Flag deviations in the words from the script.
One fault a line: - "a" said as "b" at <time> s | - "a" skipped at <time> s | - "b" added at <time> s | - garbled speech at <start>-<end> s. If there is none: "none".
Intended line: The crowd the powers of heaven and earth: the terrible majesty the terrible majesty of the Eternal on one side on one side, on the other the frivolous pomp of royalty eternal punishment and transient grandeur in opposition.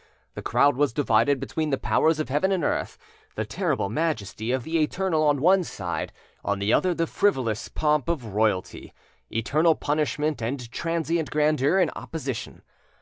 - "was divided between" added at 0.8 s
- "the terrible majesty" skipped at 4.5 s
- "one side on" skipped at 6.6 s